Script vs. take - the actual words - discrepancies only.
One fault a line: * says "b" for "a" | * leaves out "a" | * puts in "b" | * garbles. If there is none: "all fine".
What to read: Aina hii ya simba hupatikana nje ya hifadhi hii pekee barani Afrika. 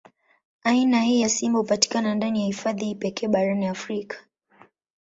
* says "ndani" for "nje"